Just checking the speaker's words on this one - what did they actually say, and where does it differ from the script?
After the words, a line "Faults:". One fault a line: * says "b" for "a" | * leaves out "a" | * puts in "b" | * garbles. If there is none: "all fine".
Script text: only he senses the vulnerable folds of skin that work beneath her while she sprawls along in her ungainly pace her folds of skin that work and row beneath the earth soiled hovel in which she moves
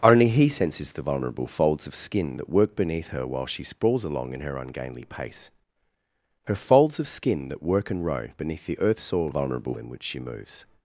only he senses the vulnerable folds of skin that work beneath her while she sprawls along in her ungainly pace her folds of skin that work and row beneath the earth soiled vulnerable in which she moves
Faults:
* says "vulnerable" for "hovel"